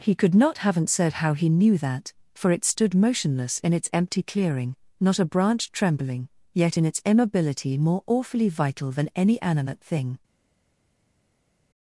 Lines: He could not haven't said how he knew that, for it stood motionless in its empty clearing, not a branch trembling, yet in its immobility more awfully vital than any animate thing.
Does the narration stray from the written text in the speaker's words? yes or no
no